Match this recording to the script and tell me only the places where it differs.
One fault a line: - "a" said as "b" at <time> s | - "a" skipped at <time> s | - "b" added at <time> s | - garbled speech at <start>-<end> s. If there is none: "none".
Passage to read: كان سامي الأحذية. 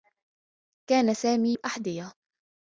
none